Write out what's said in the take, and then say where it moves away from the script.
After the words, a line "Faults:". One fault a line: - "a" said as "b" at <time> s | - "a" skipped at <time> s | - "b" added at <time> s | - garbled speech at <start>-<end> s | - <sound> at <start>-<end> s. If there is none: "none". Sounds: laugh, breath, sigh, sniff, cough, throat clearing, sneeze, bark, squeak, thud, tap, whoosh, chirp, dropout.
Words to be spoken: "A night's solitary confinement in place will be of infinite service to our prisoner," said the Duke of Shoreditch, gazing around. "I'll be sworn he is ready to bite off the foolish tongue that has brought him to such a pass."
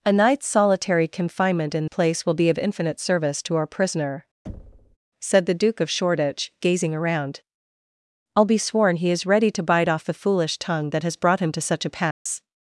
"A night's solitary confinement in place will be of infinite service to our prisoner," said the Duke of Shoreditch, gazing around. "I'll be sworn he is ready to bite off the foolish tongue that has brought him to such a pass."
Faults:
- thud at 4.5-5.0 s
- dropout at 12.1-12.3 s